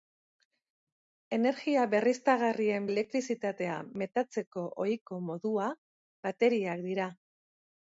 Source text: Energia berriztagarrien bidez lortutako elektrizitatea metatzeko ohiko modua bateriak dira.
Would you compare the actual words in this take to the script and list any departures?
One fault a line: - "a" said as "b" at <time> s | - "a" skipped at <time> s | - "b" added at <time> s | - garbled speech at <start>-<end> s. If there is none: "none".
- "bidez lortutako" skipped at 2.9 s